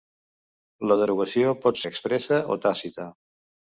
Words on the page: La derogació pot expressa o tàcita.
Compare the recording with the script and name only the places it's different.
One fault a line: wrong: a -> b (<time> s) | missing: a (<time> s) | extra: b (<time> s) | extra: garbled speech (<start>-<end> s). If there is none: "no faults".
no faults